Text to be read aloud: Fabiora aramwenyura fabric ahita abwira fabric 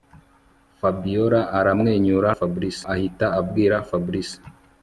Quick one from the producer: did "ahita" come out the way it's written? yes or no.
yes